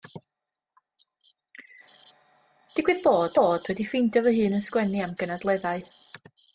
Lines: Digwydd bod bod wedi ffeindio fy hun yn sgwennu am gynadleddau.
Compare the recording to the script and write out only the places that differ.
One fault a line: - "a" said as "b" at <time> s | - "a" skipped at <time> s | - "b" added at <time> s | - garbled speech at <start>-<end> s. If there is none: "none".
none